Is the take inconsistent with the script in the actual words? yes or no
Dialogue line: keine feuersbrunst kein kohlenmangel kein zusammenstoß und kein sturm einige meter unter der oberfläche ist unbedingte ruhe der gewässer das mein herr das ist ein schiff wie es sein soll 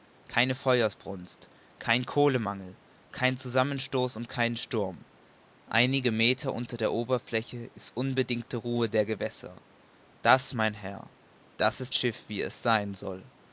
yes